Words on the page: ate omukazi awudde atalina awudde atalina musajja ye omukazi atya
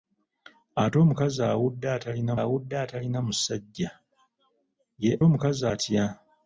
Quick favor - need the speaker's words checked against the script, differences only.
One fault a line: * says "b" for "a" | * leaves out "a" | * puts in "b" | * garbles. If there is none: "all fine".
all fine